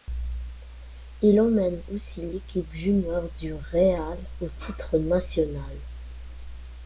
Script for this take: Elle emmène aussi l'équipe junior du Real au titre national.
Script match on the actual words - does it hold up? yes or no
no